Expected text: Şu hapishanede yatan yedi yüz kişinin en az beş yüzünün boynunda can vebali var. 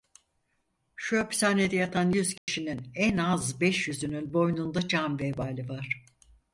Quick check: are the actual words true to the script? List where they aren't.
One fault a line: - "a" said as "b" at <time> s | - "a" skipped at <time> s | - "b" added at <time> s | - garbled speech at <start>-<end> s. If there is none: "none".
- "yedi" skipped at 2.1 s